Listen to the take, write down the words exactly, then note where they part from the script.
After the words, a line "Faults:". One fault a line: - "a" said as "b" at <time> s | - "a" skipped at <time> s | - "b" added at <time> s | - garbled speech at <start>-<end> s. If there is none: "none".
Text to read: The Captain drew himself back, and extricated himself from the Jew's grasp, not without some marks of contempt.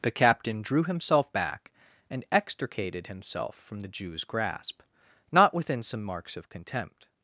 The Captain drew himself back, and extricated himself from the Jew's grasp, not within some marks of contempt.
Faults:
- "without" said as "within" at 5.5 s